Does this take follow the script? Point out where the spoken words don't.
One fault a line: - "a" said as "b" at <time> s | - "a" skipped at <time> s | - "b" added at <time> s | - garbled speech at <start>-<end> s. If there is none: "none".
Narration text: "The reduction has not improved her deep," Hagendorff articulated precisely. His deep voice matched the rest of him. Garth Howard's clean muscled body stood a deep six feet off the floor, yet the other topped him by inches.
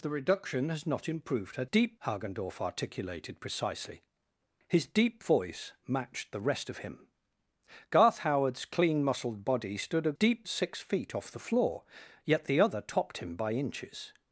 none